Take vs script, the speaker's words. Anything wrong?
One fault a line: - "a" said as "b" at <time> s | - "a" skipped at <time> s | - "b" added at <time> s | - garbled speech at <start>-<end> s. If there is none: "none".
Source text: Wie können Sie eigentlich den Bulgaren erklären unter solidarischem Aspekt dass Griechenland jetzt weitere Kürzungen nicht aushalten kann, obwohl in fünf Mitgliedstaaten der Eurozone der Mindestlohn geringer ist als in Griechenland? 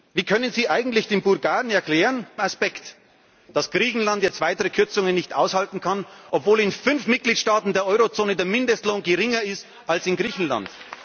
- "unter solidarischem" skipped at 2.3 s